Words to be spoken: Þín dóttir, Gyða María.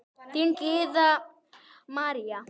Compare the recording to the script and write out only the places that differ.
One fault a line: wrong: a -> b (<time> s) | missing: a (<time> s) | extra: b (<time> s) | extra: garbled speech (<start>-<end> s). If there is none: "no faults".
missing: dóttir (0.6 s)